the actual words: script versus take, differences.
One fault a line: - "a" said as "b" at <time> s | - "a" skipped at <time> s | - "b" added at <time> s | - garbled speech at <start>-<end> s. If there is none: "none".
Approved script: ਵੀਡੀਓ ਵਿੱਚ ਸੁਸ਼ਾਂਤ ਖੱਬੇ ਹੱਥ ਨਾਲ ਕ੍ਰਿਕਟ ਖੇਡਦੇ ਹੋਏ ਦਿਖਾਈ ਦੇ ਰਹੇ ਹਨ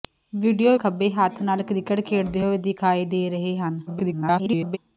- "ਵਿੱਚ ਸੁਸ਼ਾਂਤ" skipped at 0.8 s
- garbled speech at 3.9-4.8 s